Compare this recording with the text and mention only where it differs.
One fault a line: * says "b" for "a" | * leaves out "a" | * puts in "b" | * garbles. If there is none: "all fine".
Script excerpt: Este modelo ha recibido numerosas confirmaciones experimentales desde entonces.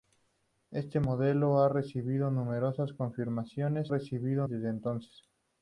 * says "recibido" for "experimentales"